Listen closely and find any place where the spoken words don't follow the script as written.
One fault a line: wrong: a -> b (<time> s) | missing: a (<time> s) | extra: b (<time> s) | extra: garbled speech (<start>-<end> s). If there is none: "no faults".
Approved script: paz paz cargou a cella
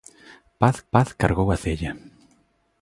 no faults